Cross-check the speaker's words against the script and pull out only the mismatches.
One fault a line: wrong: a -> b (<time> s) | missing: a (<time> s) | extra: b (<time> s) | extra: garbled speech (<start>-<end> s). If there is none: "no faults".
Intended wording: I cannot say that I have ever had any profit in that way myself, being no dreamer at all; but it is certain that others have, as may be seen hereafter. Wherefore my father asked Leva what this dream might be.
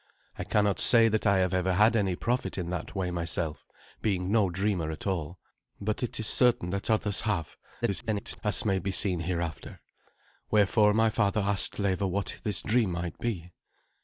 extra: garbled speech (7.8-8.4 s)